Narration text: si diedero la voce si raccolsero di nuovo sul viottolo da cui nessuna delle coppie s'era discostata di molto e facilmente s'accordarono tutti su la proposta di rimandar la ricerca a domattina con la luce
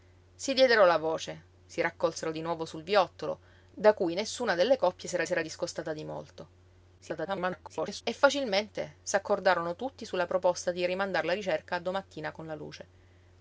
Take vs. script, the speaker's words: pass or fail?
fail